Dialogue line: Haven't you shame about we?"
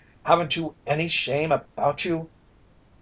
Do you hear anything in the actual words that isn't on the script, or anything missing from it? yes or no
yes